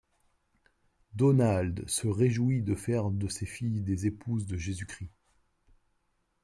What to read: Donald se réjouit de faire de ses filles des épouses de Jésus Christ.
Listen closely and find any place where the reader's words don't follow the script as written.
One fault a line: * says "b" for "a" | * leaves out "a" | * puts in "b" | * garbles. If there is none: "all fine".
all fine